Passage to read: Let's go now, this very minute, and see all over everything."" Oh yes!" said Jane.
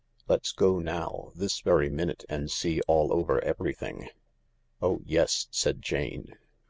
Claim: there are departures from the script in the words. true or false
false